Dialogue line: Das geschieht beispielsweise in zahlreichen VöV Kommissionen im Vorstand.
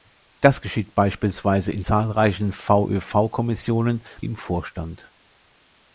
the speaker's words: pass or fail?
pass